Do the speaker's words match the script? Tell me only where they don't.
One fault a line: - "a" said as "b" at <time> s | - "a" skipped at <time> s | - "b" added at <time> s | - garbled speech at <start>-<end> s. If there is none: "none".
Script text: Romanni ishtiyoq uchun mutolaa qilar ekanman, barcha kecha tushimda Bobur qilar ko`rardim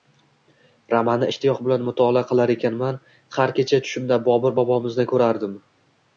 - "uchun" said as "bilan" at 1.7 s
- "barcha" said as "har" at 3.4 s
- "qilar" said as "bobomizni" at 4.6 s